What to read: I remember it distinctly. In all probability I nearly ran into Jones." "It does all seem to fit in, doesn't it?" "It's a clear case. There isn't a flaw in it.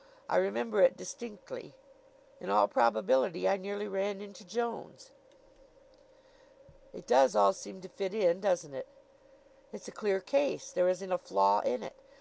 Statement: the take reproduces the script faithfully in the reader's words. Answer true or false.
true